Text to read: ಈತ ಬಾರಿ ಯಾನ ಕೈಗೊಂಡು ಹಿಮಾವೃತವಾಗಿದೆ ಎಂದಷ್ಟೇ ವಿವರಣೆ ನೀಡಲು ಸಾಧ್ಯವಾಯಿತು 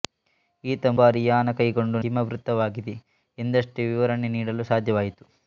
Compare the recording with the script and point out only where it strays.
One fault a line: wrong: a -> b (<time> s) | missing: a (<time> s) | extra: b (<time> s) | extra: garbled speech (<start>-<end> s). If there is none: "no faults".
no faults